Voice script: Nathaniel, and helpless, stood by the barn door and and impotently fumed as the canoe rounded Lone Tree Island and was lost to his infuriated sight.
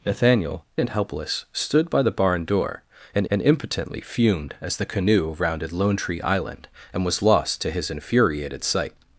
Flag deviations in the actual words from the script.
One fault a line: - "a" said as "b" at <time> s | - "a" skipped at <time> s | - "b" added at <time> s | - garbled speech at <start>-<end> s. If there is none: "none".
none